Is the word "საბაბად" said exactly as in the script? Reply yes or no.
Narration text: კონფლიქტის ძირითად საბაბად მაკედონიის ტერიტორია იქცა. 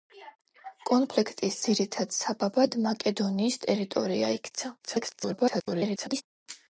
yes